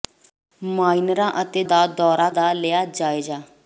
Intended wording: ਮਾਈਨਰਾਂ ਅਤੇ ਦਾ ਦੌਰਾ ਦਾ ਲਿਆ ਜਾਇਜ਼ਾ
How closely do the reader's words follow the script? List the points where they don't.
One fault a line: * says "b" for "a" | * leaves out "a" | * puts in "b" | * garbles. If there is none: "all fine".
all fine